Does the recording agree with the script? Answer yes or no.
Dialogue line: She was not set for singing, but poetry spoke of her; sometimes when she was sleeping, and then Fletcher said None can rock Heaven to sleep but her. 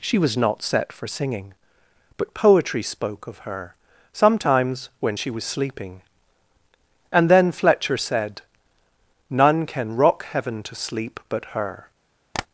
yes